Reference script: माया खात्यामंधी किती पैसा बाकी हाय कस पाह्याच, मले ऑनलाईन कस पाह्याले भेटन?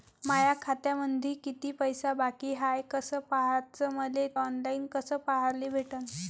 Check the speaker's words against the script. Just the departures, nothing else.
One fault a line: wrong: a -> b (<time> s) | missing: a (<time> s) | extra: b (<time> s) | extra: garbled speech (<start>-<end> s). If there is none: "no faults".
no faults